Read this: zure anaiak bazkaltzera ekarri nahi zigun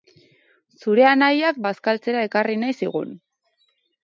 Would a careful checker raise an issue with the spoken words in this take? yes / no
no